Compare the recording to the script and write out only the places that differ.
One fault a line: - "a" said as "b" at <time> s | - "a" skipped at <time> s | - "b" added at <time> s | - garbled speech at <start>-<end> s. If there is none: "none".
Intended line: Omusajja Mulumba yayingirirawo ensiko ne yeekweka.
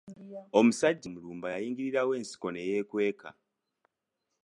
none